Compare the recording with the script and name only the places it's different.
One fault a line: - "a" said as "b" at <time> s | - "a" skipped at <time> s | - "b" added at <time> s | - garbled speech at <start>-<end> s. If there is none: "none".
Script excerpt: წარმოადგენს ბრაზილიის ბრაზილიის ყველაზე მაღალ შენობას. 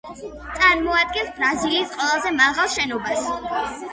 - "ბრაზილიის" skipped at 1.9 s